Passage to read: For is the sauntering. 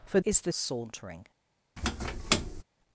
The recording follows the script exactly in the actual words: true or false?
true